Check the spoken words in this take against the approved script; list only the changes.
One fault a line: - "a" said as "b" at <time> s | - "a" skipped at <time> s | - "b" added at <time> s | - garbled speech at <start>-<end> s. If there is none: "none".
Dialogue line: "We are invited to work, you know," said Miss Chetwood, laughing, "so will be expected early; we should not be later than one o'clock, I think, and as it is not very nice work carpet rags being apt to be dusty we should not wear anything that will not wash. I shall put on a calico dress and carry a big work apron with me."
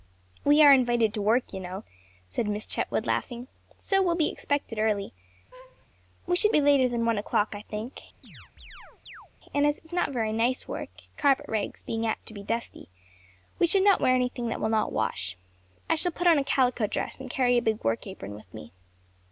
- "not" skipped at 6.5 s